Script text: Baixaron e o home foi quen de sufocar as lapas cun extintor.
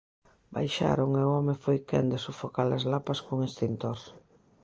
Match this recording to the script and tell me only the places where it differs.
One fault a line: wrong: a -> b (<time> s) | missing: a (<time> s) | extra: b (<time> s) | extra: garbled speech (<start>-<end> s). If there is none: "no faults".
no faults